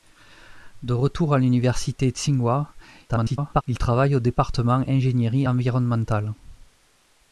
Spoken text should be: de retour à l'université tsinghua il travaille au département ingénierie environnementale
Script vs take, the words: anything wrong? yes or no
yes